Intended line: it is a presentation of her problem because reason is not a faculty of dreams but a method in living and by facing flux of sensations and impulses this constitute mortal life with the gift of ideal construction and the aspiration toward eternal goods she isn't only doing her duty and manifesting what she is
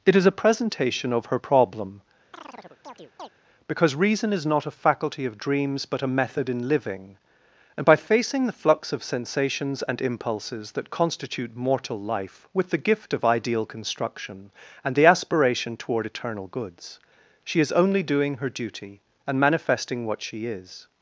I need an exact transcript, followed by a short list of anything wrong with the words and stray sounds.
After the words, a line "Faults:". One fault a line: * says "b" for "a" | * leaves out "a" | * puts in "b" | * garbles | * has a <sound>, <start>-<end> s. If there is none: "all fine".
it is a presentation of her problem because reason is not a faculty of dreams but a method in living and by facing the flux of sensations and impulses that constitute mortal life with the gift of ideal construction and the aspiration toward eternal goods she is only doing her duty and manifesting what she is
Faults:
* has a chirp, 2.3-3.3 s
* puts in "the"
* says "that" for "this"
* says "is" for "isn't"